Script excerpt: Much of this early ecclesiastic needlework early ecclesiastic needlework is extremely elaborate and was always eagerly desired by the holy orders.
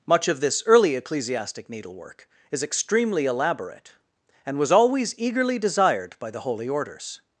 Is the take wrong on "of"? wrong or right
right